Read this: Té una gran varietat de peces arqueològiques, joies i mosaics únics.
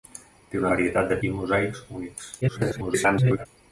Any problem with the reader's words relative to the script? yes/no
yes